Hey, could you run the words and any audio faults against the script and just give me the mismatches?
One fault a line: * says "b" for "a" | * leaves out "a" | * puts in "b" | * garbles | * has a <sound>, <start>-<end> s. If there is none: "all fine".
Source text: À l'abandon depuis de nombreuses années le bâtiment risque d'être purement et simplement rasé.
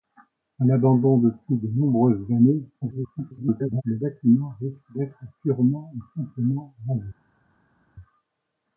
* garbles